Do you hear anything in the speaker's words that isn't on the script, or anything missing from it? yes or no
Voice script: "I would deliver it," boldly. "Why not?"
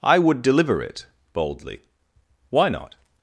no